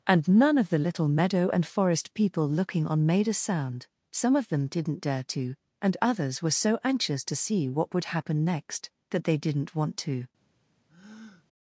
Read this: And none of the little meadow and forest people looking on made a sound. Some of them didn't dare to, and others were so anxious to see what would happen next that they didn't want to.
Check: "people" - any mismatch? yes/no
no